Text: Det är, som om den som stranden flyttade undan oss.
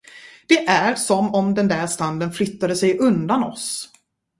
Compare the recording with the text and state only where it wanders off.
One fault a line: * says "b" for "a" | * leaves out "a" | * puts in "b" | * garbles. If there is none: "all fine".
* says "där" for "som"
* puts in "sig"